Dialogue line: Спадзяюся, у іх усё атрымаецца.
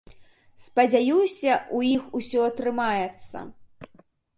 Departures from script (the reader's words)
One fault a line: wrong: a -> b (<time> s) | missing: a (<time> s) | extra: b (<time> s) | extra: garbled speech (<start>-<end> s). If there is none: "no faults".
no faults